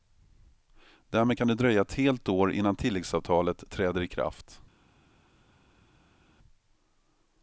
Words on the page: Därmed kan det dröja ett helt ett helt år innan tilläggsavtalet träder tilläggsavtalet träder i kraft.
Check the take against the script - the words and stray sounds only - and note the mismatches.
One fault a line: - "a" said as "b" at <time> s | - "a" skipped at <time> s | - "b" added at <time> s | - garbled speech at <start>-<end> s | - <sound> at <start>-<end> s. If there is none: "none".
- "ett helt" skipped at 2.3 s
- "tilläggsavtalet träder" skipped at 4.0 s